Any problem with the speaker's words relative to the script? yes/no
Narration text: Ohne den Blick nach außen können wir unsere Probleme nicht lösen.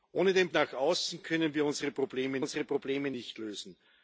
yes